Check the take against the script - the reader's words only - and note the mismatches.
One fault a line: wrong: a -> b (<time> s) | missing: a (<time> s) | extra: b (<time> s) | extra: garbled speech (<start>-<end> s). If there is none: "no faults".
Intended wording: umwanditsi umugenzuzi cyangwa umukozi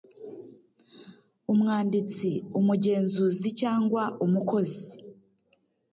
no faults